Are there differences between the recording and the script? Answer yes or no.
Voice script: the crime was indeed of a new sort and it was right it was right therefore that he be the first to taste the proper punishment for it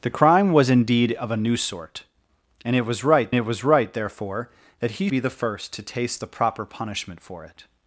no